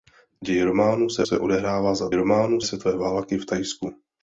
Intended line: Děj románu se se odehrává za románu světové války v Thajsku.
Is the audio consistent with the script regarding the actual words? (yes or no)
yes